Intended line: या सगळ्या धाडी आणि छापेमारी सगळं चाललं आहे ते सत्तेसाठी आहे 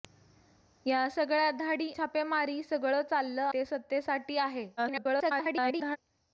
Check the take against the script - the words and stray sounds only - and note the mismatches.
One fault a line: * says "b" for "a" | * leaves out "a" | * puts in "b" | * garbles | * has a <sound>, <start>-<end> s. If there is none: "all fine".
* leaves out "आणि"
* leaves out "आहे"
* garbles